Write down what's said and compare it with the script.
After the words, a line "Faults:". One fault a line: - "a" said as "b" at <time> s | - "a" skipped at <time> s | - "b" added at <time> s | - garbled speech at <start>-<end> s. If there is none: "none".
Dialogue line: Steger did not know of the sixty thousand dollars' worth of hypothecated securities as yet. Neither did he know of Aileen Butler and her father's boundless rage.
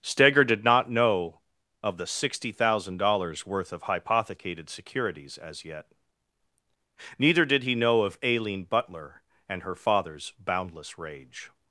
Steger did not know of the sixty thousand dollars' worth of hypothecated securities as yet. Neither did he know of Aileen Butler and her father's boundless rage.
Faults:
none